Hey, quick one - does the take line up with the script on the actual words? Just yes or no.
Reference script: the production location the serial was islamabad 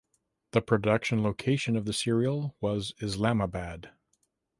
no